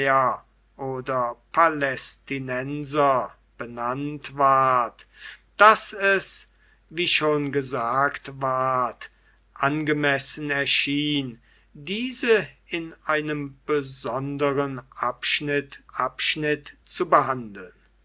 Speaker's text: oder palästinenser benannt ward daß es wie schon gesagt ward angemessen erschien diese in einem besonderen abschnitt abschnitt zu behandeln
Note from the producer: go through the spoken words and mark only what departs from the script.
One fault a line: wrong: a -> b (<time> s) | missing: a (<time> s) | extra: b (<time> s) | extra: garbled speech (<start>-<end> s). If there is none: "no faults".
no faults